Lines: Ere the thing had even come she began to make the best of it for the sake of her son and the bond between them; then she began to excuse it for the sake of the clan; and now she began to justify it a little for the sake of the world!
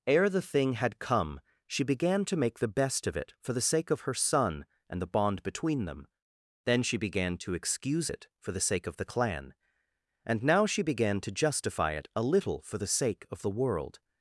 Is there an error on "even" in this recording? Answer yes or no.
yes